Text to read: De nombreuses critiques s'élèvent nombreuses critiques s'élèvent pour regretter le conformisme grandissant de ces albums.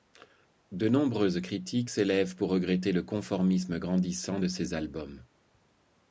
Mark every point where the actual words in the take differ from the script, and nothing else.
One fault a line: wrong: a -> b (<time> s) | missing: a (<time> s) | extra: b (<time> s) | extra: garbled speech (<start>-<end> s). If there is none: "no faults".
missing: nombreuses critiques s'élèvent (2.4 s)